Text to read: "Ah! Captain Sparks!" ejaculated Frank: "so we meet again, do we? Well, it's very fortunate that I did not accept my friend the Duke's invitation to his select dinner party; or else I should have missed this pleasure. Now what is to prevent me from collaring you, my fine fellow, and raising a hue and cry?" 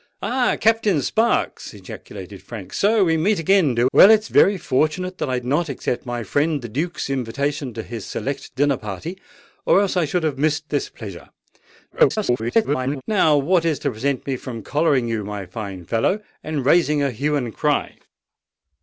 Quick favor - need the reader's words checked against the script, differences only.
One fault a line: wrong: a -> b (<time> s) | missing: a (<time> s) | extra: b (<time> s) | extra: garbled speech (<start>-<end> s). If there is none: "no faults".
missing: we (3.9 s)
missing: did (5.4 s)
extra: garbled speech (11.9-13.0 s)